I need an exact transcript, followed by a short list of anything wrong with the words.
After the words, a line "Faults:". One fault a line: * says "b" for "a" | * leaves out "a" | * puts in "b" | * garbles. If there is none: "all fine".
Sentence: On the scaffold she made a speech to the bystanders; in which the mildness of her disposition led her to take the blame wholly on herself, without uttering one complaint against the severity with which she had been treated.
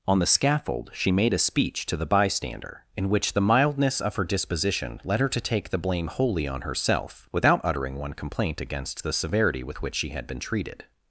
On the scaffold she made a speech to the bystander; in which the mildness of her disposition led her to take the blame wholly on herself, without uttering one complaint against the severity with which she had been treated.
Faults:
* says "bystander" for "bystanders"